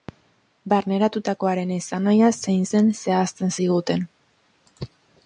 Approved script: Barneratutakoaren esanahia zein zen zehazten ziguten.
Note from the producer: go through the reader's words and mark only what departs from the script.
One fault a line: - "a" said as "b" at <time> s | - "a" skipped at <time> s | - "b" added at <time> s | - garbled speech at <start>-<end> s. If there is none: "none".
none